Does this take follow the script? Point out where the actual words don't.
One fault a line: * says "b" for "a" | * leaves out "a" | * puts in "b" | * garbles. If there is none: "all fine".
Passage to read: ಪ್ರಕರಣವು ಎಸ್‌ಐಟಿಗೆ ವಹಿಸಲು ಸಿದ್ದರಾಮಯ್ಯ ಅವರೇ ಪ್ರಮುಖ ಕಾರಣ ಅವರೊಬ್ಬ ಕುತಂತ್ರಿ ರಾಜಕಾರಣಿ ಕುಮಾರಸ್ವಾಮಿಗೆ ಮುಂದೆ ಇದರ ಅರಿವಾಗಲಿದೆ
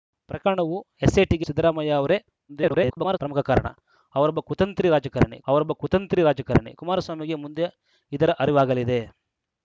* leaves out "ವಹಿಸಲು"
* garbles
* puts in "ಅವರೊಬ್ಬ ಕುತಂತ್ರಿ ರಾಜಕಾರಣಿ"